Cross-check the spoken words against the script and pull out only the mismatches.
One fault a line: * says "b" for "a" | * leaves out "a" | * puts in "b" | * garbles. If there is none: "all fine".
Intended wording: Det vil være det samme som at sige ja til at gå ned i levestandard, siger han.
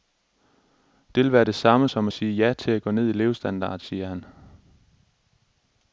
all fine